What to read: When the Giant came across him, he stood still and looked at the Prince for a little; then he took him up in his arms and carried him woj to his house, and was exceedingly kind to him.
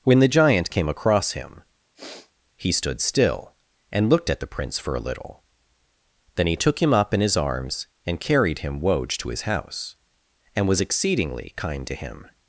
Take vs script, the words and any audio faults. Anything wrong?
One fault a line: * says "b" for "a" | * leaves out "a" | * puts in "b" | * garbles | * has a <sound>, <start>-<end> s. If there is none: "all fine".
* has a sniff, 1.9-2.3 s